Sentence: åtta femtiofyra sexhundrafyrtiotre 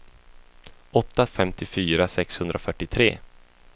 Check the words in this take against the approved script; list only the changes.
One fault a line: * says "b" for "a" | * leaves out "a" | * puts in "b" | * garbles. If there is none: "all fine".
all fine